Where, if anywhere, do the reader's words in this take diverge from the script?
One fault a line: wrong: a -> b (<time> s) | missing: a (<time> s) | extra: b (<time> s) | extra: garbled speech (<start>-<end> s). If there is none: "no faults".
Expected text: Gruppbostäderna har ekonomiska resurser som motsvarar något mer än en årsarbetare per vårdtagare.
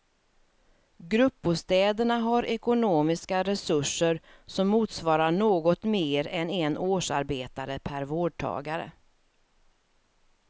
no faults